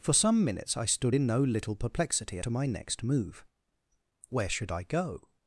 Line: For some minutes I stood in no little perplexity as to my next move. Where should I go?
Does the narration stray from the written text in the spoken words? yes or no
yes